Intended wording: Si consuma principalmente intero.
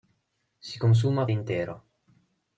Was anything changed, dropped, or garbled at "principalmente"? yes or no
yes